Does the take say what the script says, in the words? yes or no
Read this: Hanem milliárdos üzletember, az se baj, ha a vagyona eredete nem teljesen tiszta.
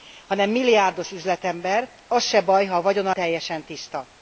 no